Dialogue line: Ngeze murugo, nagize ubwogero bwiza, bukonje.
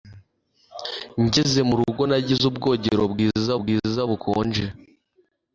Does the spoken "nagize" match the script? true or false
true